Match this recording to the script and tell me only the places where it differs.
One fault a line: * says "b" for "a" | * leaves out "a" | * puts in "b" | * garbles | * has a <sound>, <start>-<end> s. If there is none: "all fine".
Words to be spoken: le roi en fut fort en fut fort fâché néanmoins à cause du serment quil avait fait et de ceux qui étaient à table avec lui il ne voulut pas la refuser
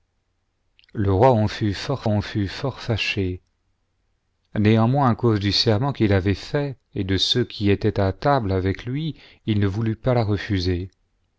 all fine